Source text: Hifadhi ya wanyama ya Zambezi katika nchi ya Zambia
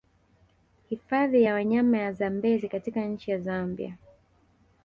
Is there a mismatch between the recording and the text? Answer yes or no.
no